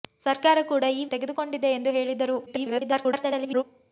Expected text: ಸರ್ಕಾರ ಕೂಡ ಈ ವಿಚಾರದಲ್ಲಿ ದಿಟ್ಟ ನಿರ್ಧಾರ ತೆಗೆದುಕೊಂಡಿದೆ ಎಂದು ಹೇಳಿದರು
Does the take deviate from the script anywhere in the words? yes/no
yes